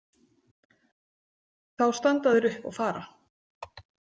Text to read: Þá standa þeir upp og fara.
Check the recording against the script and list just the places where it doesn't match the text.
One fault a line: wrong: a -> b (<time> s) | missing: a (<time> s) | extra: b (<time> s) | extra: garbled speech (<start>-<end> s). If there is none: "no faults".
no faults